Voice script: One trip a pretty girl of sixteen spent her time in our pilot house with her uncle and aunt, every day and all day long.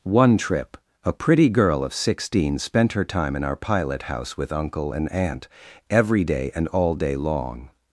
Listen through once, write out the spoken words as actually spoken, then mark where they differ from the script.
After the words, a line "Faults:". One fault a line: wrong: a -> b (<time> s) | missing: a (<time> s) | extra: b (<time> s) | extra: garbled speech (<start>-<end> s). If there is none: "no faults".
One trip a pretty girl of sixteen spent her time in our pilot house with uncle and aunt, every day and all day long.
Faults:
missing: her (4.5 s)